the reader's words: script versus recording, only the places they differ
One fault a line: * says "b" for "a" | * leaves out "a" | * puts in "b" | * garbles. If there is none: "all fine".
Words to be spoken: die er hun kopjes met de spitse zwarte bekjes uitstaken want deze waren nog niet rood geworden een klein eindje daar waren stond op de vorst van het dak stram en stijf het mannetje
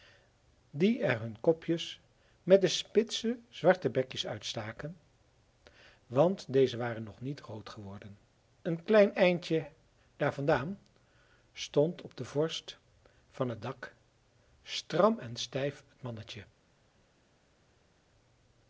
* says "vandaan" for "waren"